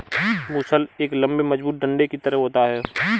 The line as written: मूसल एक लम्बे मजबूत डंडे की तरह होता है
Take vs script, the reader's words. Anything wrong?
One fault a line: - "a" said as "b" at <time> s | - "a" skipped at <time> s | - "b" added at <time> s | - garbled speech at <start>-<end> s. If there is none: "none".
none